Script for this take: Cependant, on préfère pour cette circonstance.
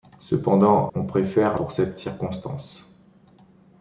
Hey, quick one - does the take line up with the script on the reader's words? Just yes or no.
yes